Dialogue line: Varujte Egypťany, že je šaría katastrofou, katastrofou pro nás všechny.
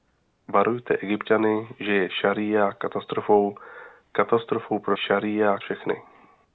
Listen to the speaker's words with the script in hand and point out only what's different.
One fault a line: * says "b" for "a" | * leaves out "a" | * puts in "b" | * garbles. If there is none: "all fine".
* says "šaría" for "nás"